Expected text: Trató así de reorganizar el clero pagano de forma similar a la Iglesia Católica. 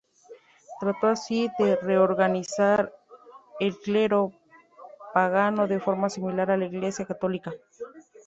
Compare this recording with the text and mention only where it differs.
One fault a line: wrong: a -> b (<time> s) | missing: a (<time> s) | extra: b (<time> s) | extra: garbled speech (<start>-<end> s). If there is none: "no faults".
no faults